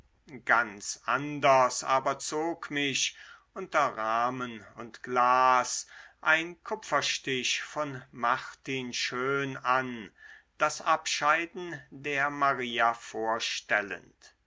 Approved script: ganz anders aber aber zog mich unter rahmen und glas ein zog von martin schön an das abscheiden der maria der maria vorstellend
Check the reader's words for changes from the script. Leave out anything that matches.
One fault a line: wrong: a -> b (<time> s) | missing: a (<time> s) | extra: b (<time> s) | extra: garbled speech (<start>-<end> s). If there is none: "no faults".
missing: aber (2.2 s)
wrong: zog -> kupferstich (6.6 s)
missing: der maria (12.9 s)